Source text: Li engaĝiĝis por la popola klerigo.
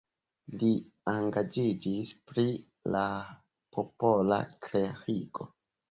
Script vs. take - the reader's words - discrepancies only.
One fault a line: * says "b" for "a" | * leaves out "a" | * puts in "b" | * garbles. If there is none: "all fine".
* says "pri" for "por"